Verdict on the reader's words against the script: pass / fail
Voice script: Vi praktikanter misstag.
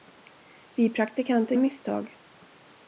pass